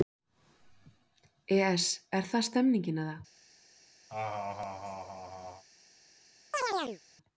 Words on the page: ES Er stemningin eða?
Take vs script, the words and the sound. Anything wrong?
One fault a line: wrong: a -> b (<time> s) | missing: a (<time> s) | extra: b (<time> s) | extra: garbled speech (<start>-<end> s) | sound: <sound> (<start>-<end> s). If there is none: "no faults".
extra: það (2.3 s)
sound: laugh (4.1-5.6 s)
sound: chirp (6.5-7.0 s)